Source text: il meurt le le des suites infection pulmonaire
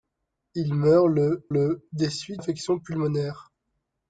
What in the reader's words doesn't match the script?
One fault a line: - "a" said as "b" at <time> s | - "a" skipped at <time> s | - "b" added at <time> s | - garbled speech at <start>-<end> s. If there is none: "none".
none